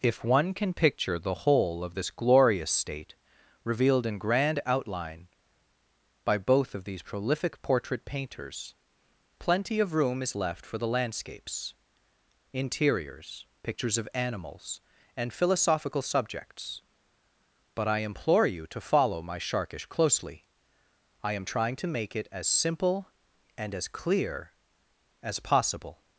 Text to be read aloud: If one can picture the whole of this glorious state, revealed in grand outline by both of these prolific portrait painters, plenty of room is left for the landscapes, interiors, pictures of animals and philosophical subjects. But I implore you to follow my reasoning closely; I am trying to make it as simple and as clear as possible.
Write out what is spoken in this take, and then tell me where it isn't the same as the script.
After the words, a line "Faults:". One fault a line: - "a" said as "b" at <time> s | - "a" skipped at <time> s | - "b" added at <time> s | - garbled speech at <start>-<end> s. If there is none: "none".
If one can picture the whole of this glorious state, revealed in grand outline by both of these prolific portrait painters, plenty of room is left for the landscapes, interiors, pictures of animals and philosophical subjects. But I implore you to follow my sharkish closely; I am trying to make it as simple and as clear as possible.
Faults:
- "reasoning" said as "sharkish" at 19.4 s